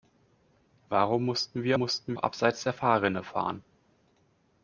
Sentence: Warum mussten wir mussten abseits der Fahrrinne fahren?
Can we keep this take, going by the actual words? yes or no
yes